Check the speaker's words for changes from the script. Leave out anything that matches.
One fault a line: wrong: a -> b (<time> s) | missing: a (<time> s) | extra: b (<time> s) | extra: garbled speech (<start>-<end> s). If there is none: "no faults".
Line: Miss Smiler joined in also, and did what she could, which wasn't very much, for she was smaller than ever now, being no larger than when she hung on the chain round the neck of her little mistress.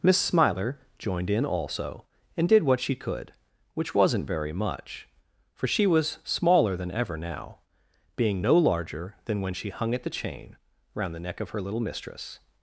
wrong: on -> at (9.9 s)